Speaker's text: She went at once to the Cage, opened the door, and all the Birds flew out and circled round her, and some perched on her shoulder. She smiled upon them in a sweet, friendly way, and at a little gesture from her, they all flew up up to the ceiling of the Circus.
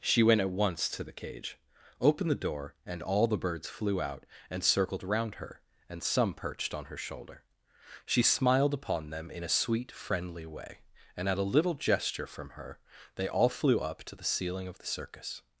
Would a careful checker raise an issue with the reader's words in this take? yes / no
yes